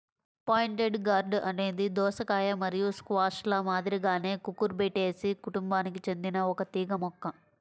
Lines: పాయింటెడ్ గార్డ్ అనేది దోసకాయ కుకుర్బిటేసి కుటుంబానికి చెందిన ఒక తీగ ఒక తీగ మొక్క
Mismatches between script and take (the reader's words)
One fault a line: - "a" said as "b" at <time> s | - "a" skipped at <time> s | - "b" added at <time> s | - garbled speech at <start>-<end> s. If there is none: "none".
- "మరియు స్క్వాష్ల మాదిరిగానే" added at 2.6 s
- "ఒక తీగ" skipped at 6.9 s